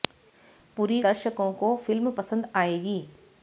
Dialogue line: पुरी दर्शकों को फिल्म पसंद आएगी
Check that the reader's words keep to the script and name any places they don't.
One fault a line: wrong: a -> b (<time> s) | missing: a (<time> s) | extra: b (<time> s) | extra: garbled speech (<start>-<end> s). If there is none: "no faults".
no faults